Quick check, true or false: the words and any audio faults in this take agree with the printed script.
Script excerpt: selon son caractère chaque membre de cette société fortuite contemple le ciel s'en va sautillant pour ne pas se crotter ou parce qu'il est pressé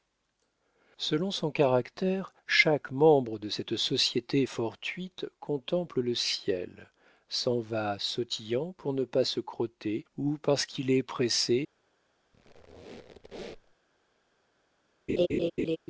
false